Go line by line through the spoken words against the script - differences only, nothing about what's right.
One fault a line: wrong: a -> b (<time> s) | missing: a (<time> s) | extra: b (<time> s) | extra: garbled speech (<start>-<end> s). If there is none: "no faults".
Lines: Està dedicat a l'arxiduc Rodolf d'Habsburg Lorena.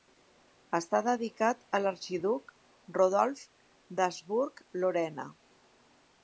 no faults